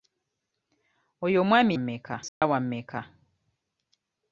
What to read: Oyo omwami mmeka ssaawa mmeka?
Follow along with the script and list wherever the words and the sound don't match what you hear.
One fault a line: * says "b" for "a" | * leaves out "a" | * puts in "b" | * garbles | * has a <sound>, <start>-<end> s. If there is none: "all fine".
* has a dropout, 2.3-2.4 s